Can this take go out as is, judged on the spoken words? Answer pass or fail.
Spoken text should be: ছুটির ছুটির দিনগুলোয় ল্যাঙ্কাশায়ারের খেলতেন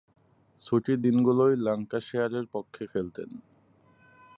fail